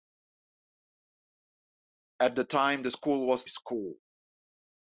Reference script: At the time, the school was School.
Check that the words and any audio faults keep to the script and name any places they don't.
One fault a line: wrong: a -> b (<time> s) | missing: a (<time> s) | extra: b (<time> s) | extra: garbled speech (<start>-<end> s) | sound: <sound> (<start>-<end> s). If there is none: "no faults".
no faults